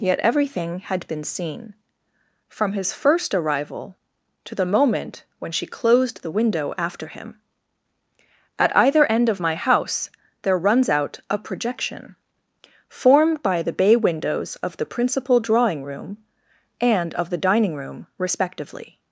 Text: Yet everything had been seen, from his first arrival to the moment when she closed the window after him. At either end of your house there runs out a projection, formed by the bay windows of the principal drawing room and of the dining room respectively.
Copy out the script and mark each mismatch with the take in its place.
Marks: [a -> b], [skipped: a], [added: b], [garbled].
Yet everything had been seen, from his first arrival to the moment when she closed the window after him. At either end of [your -> my] house there runs out a projection, formed by the bay windows of the principal drawing room and of the dining room respectively.